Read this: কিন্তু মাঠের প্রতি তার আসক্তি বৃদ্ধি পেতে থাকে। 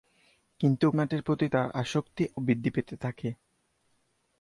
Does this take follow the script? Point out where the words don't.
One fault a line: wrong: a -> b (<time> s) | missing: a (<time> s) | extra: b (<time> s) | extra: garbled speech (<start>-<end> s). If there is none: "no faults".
no faults